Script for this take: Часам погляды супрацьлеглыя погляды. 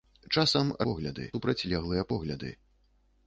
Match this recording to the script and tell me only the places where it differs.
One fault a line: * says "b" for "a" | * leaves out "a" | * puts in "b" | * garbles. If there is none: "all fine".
all fine